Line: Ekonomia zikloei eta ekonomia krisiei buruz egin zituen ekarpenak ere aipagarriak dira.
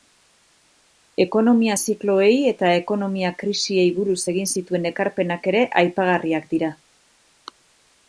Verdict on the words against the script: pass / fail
pass